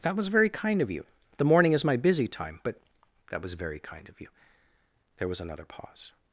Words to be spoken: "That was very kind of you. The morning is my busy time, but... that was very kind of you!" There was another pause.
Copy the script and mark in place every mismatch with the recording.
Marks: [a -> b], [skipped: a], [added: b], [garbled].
"That was very kind of you. The morning is my busy time, but... that was very kind of you!" There was another pause.